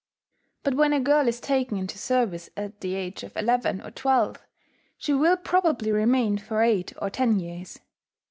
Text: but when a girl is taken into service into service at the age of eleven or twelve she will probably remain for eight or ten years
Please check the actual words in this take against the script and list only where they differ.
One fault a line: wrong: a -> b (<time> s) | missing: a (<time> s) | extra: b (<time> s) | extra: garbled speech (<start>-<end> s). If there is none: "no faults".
missing: into service (2.5 s)